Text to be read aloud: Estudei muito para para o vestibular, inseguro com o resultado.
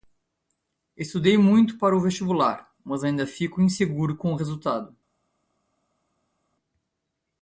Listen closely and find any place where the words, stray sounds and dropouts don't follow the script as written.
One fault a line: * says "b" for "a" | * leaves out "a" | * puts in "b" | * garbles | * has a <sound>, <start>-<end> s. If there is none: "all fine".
* leaves out "para"
* puts in "mas ainda fico"